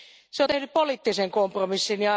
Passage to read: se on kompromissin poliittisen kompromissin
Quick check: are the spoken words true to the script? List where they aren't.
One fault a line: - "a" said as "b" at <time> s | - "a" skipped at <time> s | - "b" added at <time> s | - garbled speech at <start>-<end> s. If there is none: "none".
- "kompromissin" said as "tehnyt" at 0.5 s